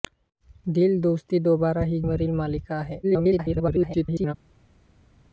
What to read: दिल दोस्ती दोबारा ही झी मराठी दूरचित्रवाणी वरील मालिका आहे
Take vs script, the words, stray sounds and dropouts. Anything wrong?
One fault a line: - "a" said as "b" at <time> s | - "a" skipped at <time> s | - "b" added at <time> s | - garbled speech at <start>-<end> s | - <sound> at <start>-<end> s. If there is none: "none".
- "झी मराठी दूरचित्रवाणी" skipped at 2.0 s
- garbled speech at 3.0-4.3 s